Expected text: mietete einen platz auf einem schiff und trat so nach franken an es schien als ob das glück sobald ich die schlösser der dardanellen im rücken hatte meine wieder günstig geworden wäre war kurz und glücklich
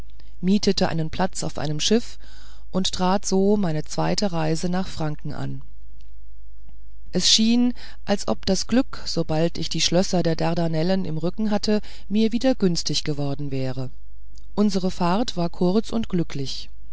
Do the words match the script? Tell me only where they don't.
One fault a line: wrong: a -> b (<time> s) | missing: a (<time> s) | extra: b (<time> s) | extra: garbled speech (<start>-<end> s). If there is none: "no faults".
extra: meine zweite reise (3.6 s)
wrong: meine -> mir (12.1 s)
extra: unsere fahrt (14.5 s)